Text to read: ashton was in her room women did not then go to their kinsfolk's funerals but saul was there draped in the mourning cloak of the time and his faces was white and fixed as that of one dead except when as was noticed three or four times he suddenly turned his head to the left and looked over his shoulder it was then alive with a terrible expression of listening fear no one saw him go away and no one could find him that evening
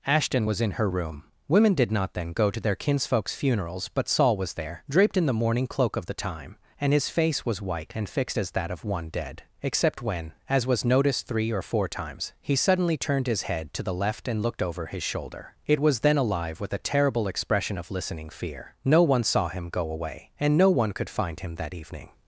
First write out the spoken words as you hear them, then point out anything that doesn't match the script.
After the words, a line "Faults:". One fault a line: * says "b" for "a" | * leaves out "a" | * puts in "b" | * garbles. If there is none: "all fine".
ashton was in her room women did not then go to their kinsfolk's funerals but saul was there draped in the mourning cloak of the time and his face was white and fixed as that of one dead except when as was noticed three or four times he suddenly turned his head to the left and looked over his shoulder it was then alive with a terrible expression of listening fear no one saw him go away and no one could find him that evening
Faults:
* says "face" for "faces"